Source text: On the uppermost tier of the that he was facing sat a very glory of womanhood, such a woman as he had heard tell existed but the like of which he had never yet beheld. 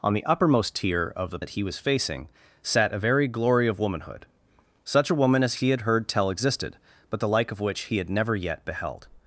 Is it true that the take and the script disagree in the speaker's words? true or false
false